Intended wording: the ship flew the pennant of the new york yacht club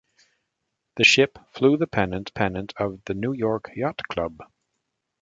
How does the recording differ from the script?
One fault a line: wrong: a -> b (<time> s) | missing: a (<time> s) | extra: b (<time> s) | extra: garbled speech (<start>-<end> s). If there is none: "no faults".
extra: pennant (2.3 s)